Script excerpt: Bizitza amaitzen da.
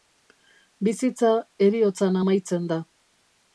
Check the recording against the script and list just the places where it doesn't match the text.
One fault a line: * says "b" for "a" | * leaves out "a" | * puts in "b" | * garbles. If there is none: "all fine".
* puts in "heriotzan"